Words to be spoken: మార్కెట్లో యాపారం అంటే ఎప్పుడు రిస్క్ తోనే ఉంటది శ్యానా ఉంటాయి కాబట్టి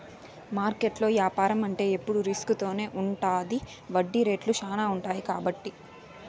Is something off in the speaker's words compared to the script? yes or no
yes